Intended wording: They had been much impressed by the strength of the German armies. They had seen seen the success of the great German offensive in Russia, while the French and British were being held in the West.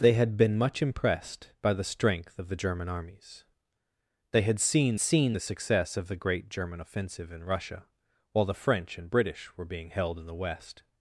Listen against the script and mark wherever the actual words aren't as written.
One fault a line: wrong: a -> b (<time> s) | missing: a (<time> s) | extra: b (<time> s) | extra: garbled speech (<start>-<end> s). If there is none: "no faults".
no faults